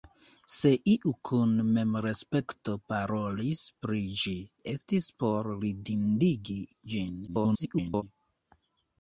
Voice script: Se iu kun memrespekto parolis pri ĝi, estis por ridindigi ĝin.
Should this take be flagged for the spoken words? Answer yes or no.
yes